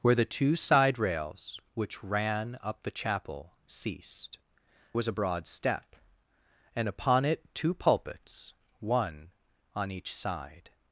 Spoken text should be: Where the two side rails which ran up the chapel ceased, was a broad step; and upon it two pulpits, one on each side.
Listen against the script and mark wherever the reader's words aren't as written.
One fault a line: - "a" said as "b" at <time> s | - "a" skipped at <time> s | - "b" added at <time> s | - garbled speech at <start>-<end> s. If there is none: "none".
none